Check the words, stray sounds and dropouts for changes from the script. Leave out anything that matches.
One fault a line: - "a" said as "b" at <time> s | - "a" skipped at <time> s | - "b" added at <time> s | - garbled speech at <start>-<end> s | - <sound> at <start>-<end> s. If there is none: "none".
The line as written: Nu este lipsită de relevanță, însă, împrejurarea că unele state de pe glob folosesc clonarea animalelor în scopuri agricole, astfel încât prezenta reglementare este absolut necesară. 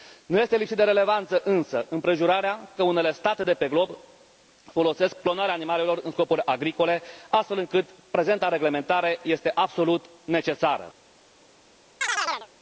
- chirp at 12.0-12.5 s